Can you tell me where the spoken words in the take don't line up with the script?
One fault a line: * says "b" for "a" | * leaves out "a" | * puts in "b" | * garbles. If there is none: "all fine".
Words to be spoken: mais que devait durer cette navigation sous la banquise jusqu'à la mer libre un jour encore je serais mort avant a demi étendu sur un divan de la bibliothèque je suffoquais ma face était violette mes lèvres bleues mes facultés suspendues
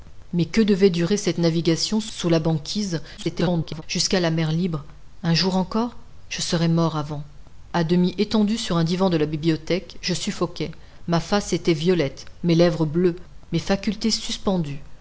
* garbles